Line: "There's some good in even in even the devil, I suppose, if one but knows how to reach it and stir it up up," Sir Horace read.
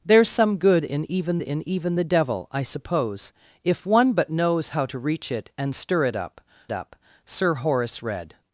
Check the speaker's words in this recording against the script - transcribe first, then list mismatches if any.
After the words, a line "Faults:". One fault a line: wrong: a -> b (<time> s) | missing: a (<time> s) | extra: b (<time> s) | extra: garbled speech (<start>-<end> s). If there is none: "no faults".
"There's some good in even in even the devil, I suppose, if one but knows how to reach it and stir it up up," Sir Horace read.
Faults:
no faults